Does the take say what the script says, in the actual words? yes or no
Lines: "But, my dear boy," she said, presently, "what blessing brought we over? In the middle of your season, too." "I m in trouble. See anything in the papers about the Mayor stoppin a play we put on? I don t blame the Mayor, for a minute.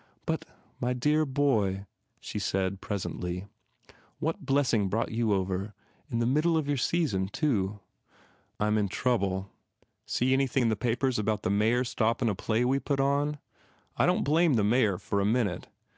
no